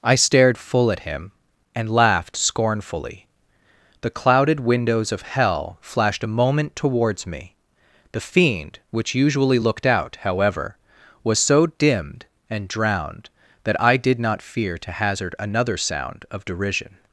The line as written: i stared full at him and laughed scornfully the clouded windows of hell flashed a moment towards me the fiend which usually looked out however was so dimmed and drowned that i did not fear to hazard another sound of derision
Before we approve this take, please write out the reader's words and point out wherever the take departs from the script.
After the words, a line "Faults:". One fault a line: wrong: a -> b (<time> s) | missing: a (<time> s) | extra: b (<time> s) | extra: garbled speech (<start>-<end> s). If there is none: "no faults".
i stared full at him and laughed scornfully the clouded windows of hell flashed a moment towards me the fiend which usually looked out however was so dimmed and drowned that i did not fear to hazard another sound of derision
Faults:
no faults